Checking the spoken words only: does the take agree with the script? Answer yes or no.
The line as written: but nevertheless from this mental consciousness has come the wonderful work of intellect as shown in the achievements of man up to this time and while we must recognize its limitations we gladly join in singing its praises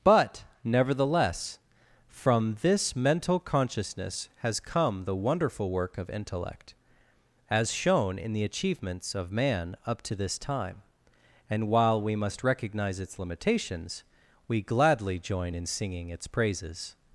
yes